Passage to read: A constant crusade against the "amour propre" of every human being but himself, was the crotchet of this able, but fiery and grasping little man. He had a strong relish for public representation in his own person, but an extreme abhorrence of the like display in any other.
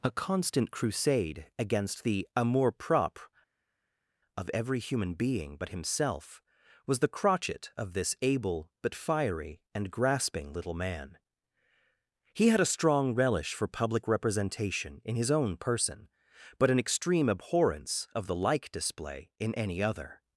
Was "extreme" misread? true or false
false